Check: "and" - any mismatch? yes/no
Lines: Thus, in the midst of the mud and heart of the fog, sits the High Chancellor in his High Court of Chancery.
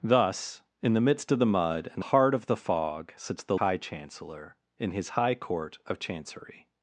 no